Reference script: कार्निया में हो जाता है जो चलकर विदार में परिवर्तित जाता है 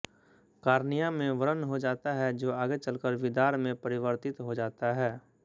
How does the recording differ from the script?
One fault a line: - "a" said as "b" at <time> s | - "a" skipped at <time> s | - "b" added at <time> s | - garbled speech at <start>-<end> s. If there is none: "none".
- "व्रण" added at 1.3 s
- "आगे" added at 2.5 s
- "हो" added at 4.4 s